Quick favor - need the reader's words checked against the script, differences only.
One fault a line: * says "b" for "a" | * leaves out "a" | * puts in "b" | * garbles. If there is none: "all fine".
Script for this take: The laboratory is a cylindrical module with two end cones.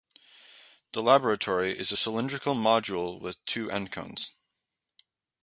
all fine